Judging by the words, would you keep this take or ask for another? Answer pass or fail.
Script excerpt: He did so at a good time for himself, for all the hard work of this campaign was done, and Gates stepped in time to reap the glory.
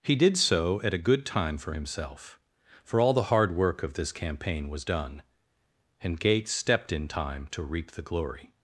pass